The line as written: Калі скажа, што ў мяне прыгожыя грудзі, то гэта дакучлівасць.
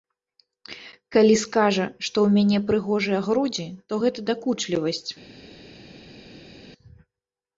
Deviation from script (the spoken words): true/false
false